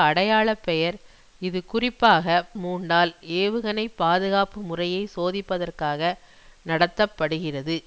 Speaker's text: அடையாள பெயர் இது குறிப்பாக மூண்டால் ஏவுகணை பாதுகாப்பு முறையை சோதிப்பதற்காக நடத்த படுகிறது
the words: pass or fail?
pass